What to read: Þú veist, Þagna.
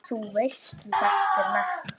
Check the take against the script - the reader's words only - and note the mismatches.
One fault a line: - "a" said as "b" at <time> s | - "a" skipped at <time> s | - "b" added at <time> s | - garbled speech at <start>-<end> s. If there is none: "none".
none